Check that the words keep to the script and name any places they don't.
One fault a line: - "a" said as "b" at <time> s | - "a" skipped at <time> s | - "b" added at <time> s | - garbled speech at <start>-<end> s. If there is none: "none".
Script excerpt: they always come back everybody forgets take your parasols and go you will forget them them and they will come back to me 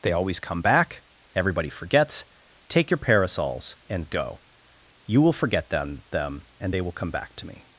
none